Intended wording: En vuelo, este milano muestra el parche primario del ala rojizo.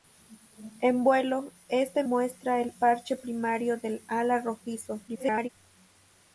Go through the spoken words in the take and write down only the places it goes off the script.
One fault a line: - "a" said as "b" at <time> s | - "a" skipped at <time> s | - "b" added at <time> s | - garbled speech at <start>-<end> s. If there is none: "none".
- "milano" skipped at 2.0 s
- garbled speech at 5.1-5.5 s